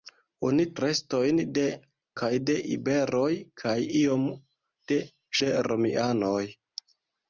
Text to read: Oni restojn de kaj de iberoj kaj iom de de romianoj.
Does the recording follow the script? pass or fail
pass